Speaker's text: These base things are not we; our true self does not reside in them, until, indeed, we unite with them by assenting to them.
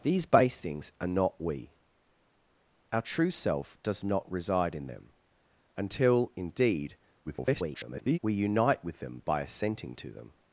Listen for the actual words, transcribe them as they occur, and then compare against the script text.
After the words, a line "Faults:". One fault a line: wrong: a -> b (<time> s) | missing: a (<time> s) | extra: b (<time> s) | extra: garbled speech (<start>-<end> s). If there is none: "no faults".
These base things are not we; our true self does not reside in them, until, indeed, [garbled] we unite with them by assenting to them.
Faults:
extra: garbled speech (7.3-8.2 s)